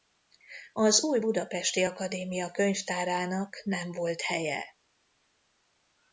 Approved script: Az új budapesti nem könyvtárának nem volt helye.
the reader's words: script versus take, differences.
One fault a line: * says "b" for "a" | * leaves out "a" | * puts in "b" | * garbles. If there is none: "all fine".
* says "akadémia" for "nem"